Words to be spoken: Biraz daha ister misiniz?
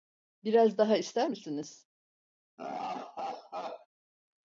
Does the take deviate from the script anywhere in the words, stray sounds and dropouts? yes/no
yes